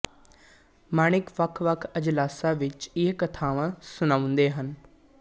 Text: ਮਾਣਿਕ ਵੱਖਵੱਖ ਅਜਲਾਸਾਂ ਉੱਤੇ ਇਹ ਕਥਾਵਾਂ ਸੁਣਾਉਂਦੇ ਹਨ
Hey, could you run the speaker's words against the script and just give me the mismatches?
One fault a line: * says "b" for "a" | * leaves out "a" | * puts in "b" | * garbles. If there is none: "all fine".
* says "ਵਿੱਚ" for "ਉੱਤੇ"